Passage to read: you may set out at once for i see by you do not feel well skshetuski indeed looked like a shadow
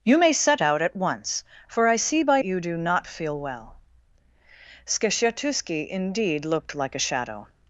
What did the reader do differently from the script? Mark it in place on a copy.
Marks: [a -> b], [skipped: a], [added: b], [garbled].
you may set out at once for i see by you do not feel well skshetuski indeed looked like a shadow